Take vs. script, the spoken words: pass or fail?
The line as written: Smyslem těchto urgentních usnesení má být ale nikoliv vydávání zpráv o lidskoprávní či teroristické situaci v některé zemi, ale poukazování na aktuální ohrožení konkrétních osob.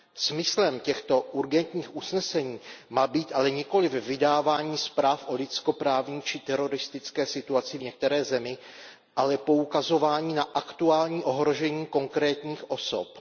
pass